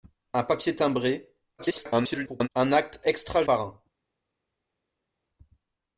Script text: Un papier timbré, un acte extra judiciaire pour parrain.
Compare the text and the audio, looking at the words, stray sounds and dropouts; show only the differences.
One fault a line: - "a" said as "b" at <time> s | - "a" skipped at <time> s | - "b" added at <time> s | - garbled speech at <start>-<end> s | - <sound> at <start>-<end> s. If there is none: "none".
- garbled speech at 1.6-2.5 s
- "judiciaire pour" skipped at 3.4 s